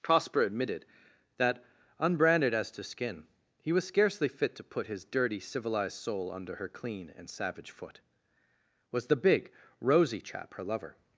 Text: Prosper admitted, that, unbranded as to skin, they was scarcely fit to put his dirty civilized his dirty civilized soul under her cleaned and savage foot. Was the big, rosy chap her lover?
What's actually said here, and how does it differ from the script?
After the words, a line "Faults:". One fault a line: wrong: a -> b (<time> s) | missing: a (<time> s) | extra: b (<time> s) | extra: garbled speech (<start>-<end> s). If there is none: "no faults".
Prosper admitted, that, unbranded as to skin, he was scarcely fit to put his dirty civilized soul under her clean and savage foot. Was the big, rosy chap her lover?
Faults:
wrong: they -> he (3.6 s)
missing: his dirty civilized (6.0 s)
wrong: cleaned -> clean (6.7 s)